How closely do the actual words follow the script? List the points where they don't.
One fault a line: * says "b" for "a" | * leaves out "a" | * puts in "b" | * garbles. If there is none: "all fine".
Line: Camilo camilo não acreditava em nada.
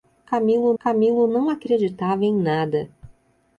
all fine